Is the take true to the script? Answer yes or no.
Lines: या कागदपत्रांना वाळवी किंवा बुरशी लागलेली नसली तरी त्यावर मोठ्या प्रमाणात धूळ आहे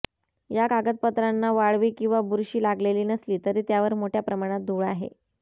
yes